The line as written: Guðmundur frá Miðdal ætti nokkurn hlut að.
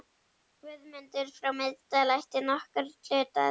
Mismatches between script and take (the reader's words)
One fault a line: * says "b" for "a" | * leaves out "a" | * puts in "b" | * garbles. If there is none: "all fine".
all fine